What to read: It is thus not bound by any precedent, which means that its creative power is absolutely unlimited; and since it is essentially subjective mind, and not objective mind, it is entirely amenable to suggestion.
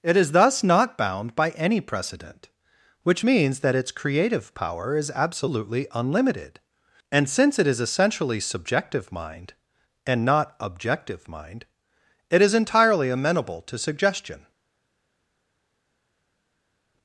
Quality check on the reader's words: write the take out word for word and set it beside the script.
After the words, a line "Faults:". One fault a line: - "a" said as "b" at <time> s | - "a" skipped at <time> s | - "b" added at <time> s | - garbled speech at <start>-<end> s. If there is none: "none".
It is thus not bound by any precedent, which means that its creative power is absolutely unlimited; and since it is essentially subjective mind, and not objective mind, it is entirely amenable to suggestion.
Faults:
none